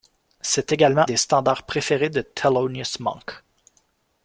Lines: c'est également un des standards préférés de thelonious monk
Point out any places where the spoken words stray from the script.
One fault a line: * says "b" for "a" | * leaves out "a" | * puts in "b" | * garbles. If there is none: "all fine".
* leaves out "un"